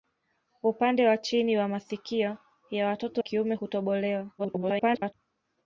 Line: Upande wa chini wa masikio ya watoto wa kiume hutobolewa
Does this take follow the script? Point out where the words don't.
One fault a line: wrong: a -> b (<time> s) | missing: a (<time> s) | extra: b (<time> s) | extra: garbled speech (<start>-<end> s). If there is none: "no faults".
missing: wa (3.2 s)
extra: garbled speech (4.4-5.1 s)